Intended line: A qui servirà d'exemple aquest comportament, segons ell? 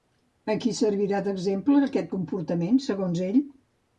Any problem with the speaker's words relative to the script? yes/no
no